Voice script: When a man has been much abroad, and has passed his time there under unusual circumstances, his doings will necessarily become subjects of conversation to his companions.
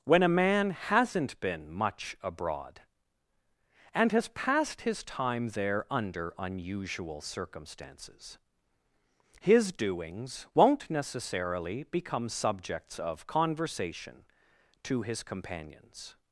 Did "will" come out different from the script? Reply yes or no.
yes